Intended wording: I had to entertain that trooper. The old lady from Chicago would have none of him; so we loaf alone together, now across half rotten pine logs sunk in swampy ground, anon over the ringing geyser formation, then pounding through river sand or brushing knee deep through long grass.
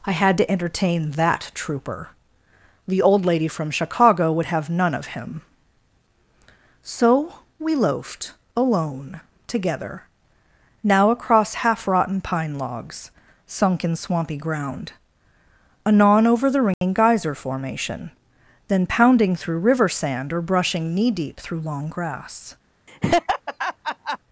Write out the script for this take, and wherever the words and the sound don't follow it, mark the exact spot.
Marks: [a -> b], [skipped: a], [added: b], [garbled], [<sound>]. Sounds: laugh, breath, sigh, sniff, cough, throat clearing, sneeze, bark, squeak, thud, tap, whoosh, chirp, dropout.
I had to entertain that trooper. The old lady from Chicago would have none of him; so we [loaf -> loafed] alone together, now across half rotten pine logs sunk in swampy ground, anon over the ringing [dropout] geyser formation, then pounding through river sand or brushing knee deep through long grass. [laugh]